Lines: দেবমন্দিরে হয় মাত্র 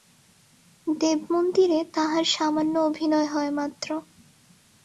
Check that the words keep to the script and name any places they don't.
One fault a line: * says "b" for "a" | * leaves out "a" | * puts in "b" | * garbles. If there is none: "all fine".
* puts in "তাহার সামান্য অভিনয়"